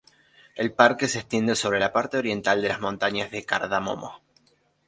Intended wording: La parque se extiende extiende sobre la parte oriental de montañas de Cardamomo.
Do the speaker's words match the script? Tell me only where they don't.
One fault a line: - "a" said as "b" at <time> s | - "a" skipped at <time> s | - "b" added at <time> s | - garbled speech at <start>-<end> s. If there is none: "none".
- "La" said as "El" at 0.6 s
- "extiende" skipped at 1.6 s
- "las" added at 2.7 s